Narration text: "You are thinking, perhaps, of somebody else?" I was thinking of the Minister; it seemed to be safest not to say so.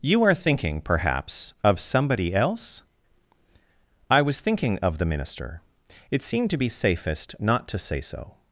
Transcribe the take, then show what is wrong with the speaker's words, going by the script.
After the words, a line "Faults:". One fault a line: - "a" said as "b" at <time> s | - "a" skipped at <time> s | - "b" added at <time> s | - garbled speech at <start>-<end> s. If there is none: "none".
"You are thinking, perhaps, of somebody else?" I was thinking of the Minister; it seemed to be safest not to say so.
Faults:
none